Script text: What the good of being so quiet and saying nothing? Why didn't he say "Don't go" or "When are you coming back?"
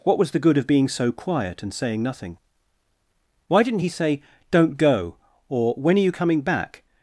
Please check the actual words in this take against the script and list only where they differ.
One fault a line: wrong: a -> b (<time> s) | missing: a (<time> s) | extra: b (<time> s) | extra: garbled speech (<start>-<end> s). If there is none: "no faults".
extra: was (0.2 s)